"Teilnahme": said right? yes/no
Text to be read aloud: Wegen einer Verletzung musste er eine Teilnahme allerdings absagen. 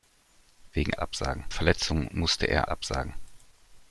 no